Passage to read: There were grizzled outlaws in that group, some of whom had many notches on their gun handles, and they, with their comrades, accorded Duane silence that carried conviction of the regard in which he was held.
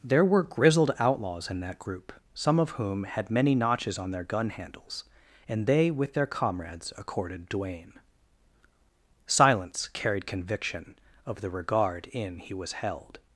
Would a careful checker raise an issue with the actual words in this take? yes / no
yes